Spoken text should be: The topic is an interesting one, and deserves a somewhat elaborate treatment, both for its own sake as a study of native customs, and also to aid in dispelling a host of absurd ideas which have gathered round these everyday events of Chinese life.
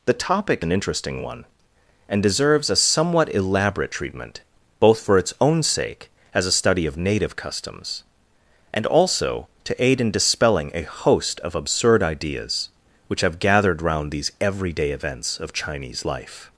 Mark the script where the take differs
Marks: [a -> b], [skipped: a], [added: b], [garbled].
The topic [skipped: is] an interesting one, and deserves a somewhat elaborate treatment, both for its own sake as a study of native customs, and also to aid in dispelling a host of absurd ideas which have gathered round these everyday events of Chinese life.